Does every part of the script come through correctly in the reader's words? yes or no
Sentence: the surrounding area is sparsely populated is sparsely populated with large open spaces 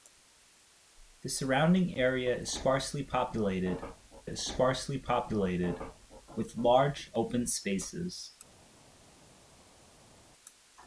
yes